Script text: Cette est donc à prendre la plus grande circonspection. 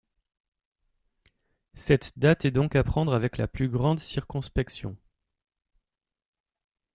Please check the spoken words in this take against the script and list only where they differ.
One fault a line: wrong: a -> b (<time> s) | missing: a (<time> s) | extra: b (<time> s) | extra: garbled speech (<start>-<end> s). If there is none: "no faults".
extra: date (2.2 s)
extra: avec (3.1 s)